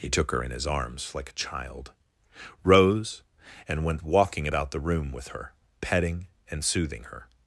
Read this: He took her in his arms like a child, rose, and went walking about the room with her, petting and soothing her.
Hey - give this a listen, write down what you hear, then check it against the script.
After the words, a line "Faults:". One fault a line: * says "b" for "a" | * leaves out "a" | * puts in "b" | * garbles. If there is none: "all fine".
He took her in his arms like a child, rose, and went walking about the room with her, petting and soothing her.
Faults:
all fine